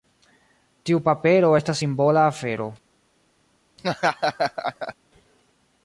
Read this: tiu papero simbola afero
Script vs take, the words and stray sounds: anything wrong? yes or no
yes